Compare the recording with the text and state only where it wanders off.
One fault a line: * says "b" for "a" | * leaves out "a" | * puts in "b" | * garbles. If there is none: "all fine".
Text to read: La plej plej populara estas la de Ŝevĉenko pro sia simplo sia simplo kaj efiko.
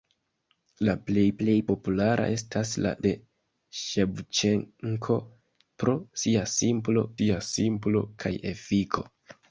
all fine